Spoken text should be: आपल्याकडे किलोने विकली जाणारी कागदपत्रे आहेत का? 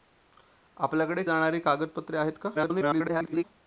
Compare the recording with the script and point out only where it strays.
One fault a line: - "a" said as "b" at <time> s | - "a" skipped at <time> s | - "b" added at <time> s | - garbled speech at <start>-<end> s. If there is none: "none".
- "किलोने विकली" skipped at 1.2 s
- garbled speech at 2.5-3.4 s